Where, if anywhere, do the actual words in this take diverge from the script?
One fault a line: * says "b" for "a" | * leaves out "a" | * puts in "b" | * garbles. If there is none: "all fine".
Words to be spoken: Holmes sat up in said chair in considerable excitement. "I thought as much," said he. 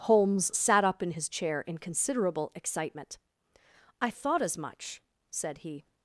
* says "his" for "said"